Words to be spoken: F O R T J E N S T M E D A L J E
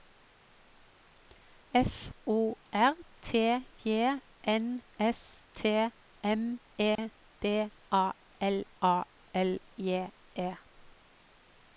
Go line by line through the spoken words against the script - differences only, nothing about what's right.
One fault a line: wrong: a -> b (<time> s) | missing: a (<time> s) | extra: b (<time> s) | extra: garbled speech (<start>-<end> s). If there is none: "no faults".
missing: E (4.2 s)
extra: A L (8.8 s)